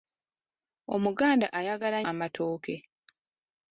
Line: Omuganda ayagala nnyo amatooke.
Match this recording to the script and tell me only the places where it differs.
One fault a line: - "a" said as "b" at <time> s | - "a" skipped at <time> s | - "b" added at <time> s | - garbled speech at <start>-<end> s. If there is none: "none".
- "nnyo" skipped at 2.0 s